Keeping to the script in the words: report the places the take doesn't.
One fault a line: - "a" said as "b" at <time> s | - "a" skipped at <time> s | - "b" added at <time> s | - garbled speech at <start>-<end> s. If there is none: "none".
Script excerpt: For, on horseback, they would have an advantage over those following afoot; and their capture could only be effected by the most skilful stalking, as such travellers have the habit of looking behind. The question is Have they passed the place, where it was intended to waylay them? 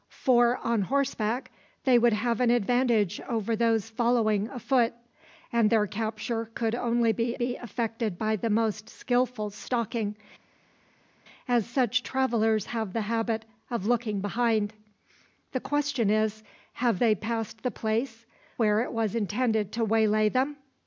- "be" added at 7.3 s